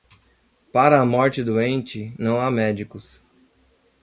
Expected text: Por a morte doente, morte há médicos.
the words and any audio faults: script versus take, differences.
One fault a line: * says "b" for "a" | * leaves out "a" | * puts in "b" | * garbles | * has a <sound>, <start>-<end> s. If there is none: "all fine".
* says "Para" for "Por"
* says "não" for "morte"